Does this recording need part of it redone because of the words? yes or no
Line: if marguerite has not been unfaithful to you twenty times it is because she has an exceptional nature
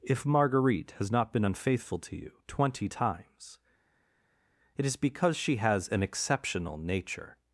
no